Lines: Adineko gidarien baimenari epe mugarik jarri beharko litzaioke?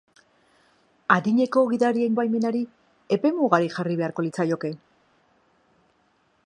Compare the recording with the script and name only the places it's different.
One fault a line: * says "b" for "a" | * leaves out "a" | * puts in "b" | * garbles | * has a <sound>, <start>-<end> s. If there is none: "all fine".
all fine